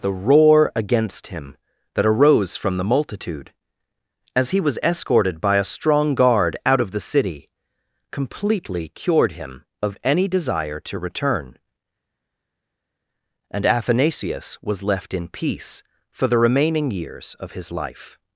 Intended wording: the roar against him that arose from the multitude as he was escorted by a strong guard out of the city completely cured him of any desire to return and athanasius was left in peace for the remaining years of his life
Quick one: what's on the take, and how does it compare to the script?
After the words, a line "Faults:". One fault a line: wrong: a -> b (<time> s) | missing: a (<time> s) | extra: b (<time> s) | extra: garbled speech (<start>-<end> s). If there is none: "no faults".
the roar against him that arose from the multitude as he was escorted by a strong guard out of the city completely cured him of any desire to return and athanasius was left in peace for the remaining years of his life
Faults:
no faults